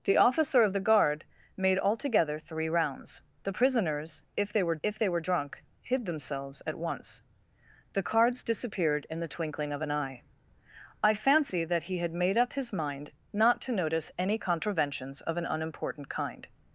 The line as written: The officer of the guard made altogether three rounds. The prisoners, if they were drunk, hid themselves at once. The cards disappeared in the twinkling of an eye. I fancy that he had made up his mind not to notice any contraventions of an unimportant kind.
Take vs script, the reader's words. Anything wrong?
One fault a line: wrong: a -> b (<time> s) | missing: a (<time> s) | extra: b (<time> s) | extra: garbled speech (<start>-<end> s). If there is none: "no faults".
extra: if they were (4.8 s)